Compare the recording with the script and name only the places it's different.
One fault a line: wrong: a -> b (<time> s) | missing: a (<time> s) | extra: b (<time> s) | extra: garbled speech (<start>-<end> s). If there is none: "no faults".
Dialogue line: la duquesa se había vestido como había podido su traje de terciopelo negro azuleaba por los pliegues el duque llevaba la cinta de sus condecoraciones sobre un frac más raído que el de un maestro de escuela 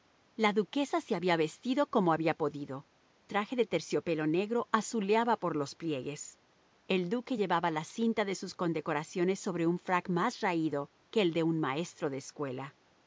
missing: su (2.9 s)